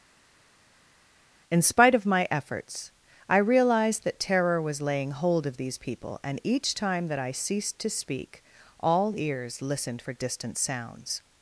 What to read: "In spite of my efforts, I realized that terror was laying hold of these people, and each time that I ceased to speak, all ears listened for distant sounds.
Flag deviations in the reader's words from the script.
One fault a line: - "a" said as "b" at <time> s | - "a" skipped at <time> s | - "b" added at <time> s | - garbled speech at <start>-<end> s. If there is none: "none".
none